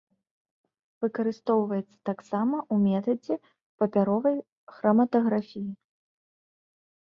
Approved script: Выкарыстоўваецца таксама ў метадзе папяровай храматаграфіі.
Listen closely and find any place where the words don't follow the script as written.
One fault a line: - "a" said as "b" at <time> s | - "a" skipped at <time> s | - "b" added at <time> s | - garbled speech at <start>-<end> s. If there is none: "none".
none